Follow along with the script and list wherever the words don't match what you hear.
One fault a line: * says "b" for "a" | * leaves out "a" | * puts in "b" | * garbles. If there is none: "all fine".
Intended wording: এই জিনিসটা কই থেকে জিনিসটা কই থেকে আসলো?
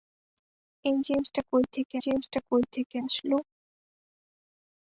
all fine